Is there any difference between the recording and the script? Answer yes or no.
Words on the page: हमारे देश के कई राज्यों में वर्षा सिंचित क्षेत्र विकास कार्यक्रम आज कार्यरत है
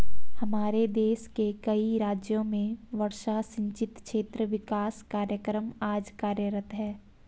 no